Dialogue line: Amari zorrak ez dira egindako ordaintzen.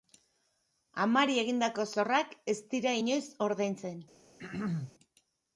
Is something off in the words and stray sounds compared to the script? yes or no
yes